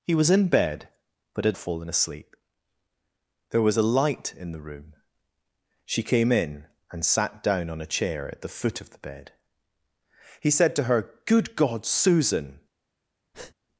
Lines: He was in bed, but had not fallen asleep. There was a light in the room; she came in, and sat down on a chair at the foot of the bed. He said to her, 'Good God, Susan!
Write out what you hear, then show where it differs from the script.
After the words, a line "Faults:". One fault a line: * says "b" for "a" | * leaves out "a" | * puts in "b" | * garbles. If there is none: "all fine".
He was in bed, but had fallen asleep. There was a light in the room; she came in, and sat down on a chair at the foot of the bed. He said to her, 'Good God, Susan!
Faults:
* leaves out "not"